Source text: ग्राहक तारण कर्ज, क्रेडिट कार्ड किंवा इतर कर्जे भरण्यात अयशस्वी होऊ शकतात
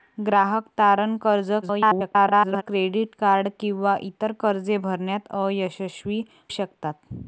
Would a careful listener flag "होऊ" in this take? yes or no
yes